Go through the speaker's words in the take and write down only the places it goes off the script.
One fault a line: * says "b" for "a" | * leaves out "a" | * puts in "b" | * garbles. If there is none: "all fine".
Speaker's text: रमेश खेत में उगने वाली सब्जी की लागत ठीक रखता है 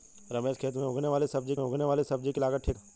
* puts in "उगने वाली सब्जी"
* leaves out "रखता"